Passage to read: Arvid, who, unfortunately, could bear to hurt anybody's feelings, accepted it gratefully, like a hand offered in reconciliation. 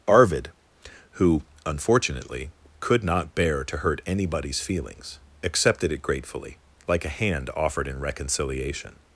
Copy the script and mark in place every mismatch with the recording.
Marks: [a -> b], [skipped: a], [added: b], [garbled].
Arvid, who, unfortunately, could [added: not] bear to hurt anybody's feelings, accepted it gratefully, like a hand offered in reconciliation.